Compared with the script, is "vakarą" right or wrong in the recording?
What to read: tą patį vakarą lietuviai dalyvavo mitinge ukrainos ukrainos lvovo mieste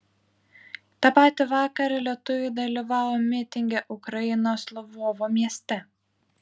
right